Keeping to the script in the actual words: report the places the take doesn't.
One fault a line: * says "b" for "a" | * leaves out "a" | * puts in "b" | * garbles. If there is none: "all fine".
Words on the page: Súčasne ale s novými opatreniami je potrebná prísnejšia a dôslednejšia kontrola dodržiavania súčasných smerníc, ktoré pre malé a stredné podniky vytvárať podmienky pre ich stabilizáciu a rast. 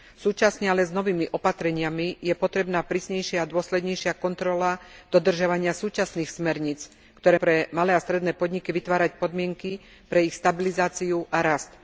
all fine